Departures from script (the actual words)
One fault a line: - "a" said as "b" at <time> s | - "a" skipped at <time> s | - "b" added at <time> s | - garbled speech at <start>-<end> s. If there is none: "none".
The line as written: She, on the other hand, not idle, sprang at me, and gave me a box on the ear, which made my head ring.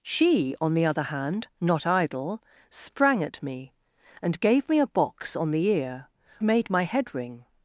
- "which" skipped at 6.1 s